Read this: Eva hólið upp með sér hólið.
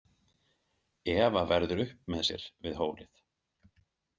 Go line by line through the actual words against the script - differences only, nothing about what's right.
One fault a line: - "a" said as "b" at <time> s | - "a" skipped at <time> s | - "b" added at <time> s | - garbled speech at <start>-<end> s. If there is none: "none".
- "hólið" said as "verður" at 1.5 s
- "við" added at 2.7 s